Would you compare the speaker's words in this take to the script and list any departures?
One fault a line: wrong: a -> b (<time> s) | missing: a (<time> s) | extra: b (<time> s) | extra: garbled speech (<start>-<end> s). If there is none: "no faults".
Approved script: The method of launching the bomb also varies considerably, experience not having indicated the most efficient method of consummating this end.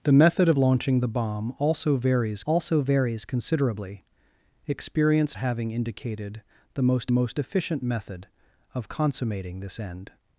extra: also varies (2.4 s)
missing: not (5.4 s)
extra: most (7.1 s)